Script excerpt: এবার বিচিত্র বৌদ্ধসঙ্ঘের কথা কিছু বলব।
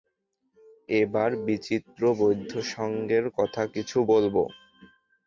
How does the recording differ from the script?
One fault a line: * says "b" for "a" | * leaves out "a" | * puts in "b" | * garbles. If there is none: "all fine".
all fine